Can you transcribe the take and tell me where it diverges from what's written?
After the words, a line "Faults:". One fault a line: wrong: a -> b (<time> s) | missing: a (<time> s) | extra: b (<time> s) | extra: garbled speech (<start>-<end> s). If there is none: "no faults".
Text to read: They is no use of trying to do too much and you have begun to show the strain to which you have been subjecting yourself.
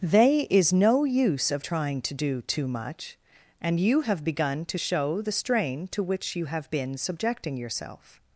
They is no use of trying to do too much and you have begun to show the strain to which you have been subjecting yourself.
Faults:
no faults